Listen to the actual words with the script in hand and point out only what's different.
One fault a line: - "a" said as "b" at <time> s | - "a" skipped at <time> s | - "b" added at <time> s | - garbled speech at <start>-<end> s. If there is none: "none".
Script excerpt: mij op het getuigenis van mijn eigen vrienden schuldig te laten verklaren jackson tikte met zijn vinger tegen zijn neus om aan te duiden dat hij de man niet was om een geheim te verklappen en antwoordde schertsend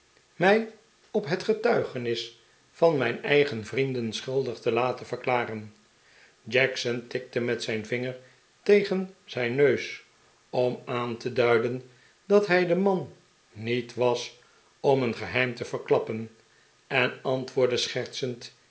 none